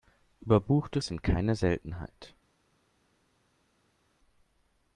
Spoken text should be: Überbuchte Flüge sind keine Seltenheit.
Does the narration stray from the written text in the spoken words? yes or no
yes